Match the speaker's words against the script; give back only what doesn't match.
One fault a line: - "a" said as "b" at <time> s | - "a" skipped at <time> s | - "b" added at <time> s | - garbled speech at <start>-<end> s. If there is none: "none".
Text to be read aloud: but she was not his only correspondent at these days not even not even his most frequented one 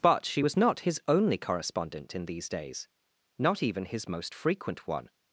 - "at" said as "in" at 2.1 s
- "not even" skipped at 3.8 s
- "frequented" said as "frequent" at 4.3 s